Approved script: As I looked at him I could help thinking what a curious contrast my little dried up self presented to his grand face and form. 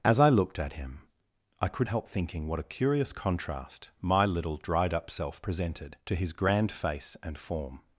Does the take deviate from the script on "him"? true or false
false